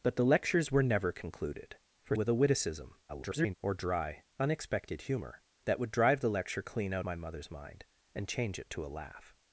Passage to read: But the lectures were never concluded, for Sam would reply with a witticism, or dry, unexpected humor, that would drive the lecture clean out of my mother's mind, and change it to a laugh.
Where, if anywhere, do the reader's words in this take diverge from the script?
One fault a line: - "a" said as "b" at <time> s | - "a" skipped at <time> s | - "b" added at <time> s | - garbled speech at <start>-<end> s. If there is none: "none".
- "Sam would reply" skipped at 2.1 s
- garbled speech at 3.1-3.5 s
- "of" skipped at 7.1 s